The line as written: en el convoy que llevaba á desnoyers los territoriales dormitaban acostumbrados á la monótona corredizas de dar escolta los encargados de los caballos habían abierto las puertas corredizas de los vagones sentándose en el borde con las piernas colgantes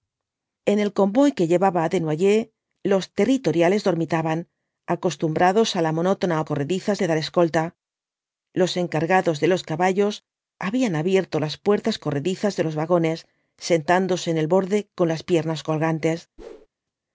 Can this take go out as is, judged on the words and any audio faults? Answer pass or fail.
fail